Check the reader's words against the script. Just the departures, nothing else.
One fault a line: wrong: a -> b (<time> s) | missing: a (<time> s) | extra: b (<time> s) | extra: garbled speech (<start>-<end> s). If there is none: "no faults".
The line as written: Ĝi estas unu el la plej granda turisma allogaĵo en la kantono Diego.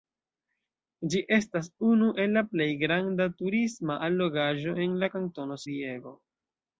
no faults